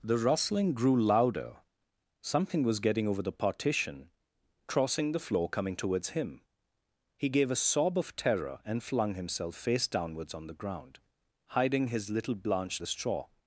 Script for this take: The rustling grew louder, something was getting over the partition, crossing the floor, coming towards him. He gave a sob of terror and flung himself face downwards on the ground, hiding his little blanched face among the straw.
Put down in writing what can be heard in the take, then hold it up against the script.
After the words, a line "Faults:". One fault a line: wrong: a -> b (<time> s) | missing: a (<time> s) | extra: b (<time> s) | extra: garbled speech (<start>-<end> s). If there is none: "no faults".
The rustling grew louder, something was getting over the partition, crossing the floor, coming towards him. He gave a sob of terror and flung himself face downwards on the ground, hiding his little blanched the straw.
Faults:
missing: face among (12.8 s)